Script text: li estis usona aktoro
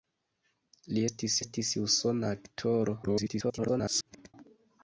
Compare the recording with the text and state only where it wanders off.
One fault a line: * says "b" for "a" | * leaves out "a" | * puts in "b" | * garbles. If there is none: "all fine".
* puts in "estis"
* garbles